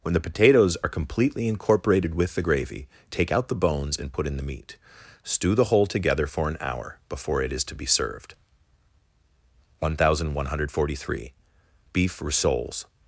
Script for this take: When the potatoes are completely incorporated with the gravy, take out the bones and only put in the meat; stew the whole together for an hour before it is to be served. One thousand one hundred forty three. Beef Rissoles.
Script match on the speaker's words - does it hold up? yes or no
no